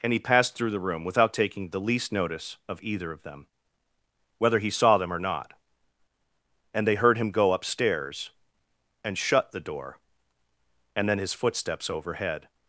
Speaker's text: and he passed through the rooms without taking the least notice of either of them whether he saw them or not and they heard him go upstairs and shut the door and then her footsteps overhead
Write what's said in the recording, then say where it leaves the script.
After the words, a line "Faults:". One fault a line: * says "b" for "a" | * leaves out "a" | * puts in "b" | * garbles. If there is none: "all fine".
and he passed through the room without taking the least notice of either of them whether he saw them or not and they heard him go upstairs and shut the door and then his footsteps overhead
Faults:
* says "room" for "rooms"
* says "his" for "her"